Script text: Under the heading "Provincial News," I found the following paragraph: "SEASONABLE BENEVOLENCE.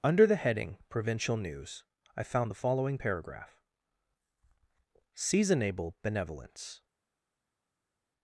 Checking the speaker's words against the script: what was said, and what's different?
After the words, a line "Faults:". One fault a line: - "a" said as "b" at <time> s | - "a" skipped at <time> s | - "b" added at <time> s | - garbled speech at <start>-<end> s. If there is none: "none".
Under the heading "Provincial News," I found the following paragraph: "SEASONABLE BENEVOLENCE.
Faults:
none